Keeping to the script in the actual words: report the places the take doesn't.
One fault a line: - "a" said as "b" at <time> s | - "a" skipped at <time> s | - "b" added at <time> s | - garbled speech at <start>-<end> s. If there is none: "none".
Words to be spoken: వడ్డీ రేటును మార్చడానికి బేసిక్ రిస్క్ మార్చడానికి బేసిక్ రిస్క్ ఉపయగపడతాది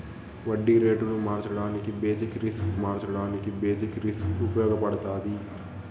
none